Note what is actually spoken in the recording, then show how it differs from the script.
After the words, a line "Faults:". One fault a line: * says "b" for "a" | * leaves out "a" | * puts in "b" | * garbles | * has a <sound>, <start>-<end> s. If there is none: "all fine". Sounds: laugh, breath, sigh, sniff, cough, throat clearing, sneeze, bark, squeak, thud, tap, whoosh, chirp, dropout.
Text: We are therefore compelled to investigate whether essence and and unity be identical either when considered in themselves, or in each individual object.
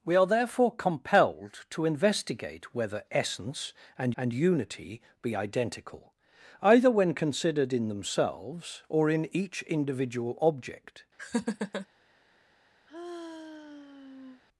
We are therefore compelled to investigate whether essence and and unity be identical either when considered in themselves, or in each individual object.
Faults:
* has a laugh, 11.2-11.9 s
* has a sigh, 12.9-14.4 s